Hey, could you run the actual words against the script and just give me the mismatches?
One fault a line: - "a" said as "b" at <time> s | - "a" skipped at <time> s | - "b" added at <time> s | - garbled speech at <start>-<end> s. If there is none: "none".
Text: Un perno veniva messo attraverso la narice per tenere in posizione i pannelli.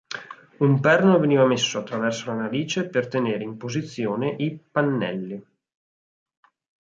none